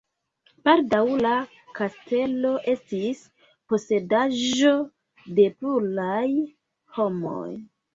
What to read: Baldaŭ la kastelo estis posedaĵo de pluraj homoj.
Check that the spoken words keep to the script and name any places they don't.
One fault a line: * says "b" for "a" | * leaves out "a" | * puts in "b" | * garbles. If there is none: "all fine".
all fine